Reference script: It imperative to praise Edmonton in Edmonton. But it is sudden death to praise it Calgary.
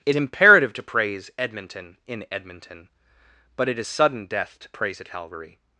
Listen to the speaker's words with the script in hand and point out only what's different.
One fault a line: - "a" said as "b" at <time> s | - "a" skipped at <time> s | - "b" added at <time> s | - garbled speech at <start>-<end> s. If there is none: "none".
none